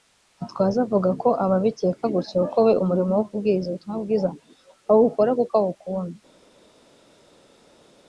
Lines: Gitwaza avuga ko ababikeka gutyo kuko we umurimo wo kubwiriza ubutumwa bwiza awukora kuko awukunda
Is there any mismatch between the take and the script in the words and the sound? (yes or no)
no